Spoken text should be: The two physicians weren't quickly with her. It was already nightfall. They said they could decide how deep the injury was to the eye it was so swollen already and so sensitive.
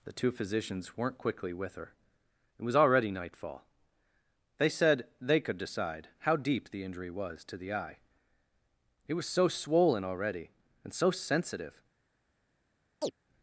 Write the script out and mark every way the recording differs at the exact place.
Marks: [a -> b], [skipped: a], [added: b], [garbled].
The two physicians weren't quickly with her. It was already nightfall. They said they could decide how deep the injury was to the eye it was so swollen already and so sensitive.